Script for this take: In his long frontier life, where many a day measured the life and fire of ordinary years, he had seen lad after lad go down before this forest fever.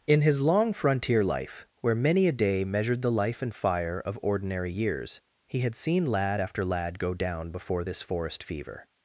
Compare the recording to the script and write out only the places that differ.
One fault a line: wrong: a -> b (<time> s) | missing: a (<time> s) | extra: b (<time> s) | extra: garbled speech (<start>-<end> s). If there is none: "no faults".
no faults